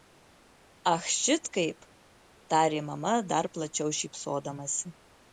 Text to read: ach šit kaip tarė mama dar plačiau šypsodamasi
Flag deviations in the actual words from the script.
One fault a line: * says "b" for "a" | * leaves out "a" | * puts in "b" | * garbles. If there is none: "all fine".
all fine